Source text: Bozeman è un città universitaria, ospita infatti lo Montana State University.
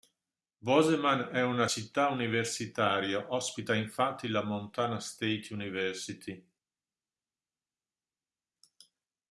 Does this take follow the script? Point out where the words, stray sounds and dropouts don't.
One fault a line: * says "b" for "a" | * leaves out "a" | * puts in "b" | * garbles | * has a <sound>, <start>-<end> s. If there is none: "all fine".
* says "una" for "un"
* says "la" for "lo"